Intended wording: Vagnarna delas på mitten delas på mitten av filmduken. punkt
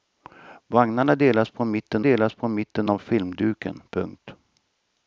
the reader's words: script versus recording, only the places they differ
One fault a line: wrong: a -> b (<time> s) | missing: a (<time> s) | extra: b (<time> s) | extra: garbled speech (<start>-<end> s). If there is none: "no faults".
no faults